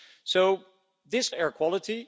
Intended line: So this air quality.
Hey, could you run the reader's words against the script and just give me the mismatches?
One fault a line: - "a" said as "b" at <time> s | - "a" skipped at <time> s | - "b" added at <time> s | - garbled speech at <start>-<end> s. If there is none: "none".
none